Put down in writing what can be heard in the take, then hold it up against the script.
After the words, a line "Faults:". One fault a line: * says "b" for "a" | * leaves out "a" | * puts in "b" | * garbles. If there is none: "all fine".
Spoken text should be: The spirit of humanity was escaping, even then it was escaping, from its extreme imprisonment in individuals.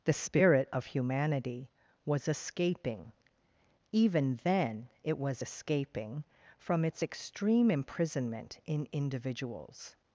The spirit of humanity was escaping, even then it was escaping, from its extreme imprisonment in individuals.
Faults:
all fine